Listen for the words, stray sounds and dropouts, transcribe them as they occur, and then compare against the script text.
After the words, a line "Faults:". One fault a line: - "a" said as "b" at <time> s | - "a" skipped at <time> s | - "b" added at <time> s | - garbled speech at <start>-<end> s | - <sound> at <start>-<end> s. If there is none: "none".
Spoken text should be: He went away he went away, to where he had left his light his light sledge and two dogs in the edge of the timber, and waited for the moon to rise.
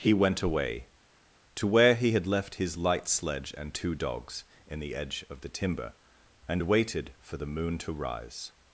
He went away, to where he had left his light sledge and two dogs in the edge of the timber, and waited for the moon to rise.
Faults:
- "he went away" skipped at 0.9 s
- "his light" skipped at 3.1 s